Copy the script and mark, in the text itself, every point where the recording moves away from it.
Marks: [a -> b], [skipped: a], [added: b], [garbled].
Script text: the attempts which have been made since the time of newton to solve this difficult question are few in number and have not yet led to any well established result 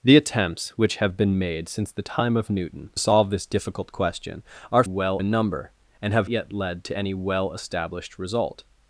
the attempts which have been made since the time of newton [skipped: to] solve this difficult question are [few -> well] in number and have [skipped: not] yet led to any well established result